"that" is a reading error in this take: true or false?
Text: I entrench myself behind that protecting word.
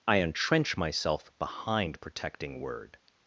true